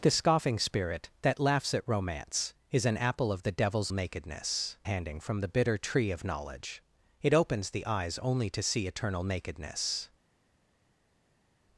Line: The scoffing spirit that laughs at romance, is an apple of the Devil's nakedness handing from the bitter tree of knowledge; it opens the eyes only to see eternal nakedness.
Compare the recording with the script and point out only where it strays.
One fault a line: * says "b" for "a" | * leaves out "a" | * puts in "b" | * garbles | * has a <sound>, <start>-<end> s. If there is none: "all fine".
all fine